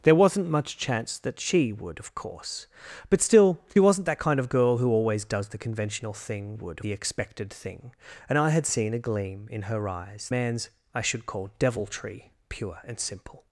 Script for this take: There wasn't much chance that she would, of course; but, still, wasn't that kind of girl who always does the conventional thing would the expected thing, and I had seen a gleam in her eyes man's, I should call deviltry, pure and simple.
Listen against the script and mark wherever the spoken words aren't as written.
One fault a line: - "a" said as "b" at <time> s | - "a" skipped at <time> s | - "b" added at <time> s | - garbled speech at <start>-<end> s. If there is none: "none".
none